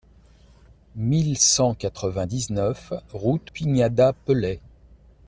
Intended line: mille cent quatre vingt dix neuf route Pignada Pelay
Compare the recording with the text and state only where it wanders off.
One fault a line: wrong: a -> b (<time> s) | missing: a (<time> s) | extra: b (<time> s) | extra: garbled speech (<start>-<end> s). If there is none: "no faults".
no faults